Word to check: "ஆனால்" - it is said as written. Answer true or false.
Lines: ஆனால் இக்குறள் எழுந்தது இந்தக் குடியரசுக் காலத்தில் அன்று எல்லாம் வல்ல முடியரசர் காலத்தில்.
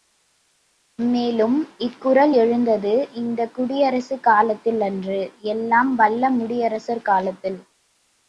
false